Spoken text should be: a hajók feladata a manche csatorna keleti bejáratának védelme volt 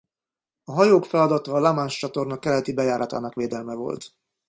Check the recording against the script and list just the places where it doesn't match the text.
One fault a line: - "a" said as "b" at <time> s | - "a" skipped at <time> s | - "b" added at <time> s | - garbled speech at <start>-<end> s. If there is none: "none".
- "la" added at 1.6 s